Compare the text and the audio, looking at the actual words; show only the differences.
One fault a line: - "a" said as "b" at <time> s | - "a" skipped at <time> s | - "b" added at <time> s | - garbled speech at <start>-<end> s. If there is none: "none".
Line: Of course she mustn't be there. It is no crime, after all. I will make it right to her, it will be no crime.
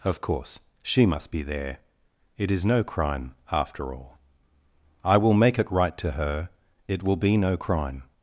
- "mustn't" said as "must" at 1.1 s